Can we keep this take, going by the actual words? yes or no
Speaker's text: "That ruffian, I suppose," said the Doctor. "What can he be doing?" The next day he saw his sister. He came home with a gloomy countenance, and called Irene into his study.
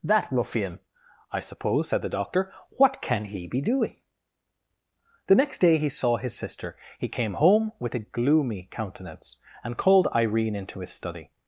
yes